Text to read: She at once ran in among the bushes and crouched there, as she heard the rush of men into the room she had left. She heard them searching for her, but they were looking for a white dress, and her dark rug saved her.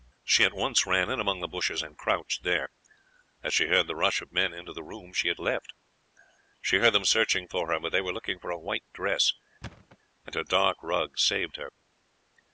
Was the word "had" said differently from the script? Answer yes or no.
no